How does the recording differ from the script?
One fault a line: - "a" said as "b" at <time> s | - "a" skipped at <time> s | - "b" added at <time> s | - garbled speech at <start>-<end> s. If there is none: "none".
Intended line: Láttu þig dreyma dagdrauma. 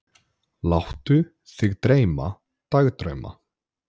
none